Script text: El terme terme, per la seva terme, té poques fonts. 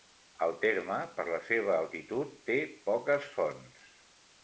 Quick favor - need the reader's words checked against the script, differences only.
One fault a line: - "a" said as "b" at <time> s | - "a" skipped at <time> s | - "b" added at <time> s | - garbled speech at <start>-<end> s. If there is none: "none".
- "terme" skipped at 1.0 s
- "terme" said as "altitud" at 1.8 s